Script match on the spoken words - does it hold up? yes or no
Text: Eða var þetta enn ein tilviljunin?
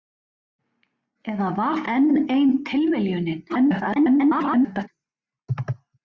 no